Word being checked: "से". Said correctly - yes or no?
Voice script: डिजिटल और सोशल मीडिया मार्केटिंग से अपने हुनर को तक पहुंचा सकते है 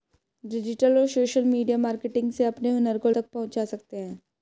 yes